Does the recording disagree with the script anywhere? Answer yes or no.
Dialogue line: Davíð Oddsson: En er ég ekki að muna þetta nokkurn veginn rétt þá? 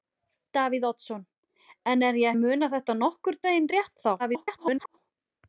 yes